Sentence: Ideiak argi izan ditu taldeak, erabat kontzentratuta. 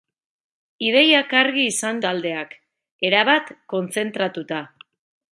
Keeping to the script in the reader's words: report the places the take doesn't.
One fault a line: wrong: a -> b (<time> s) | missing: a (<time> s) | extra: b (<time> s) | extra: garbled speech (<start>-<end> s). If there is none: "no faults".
missing: ditu (2.0 s)